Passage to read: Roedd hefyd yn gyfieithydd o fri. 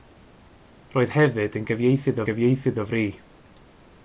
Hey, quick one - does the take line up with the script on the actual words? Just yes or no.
no